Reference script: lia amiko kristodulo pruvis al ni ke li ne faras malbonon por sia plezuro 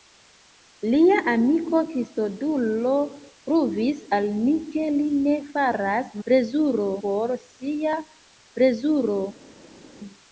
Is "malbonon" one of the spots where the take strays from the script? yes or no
yes